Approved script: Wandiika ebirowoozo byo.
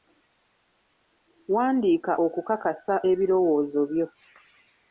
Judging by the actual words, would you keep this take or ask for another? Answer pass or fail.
fail